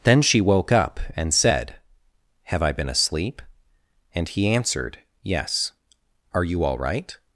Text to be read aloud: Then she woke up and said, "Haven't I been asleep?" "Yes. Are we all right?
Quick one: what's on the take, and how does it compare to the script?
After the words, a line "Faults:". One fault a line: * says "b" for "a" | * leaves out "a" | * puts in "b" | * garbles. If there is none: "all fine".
Then she woke up and said, "Have I been asleep?" and he answered, "Yes. Are you all right?
Faults:
* says "Have" for "Haven't"
* puts in "and he answered"
* says "you" for "we"